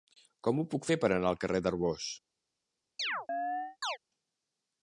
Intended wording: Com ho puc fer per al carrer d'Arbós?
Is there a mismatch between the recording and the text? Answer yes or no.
yes